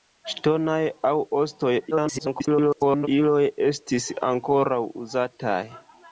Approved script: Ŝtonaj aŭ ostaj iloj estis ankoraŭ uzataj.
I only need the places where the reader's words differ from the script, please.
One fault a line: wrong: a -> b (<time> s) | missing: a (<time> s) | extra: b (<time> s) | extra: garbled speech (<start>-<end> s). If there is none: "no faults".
extra: garbled speech (1.9-3.1 s)